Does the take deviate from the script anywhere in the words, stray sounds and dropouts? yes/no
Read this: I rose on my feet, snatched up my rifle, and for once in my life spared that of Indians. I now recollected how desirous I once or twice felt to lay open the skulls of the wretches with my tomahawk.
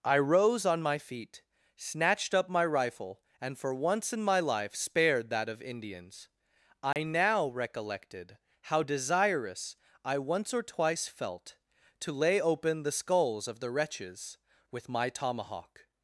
yes